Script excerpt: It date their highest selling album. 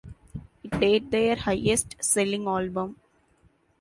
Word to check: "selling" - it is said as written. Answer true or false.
true